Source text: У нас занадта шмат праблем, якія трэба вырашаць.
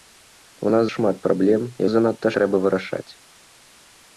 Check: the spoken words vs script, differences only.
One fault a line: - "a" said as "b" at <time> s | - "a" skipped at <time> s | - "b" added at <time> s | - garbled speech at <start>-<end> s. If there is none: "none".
- "занадта" skipped at 0.8 s
- "якія" said as "занадта" at 1.9 s